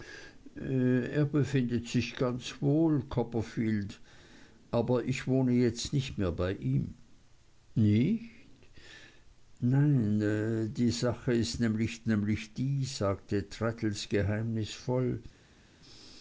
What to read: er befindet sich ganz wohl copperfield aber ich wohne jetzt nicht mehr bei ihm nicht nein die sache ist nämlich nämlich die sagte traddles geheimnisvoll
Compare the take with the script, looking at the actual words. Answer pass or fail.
pass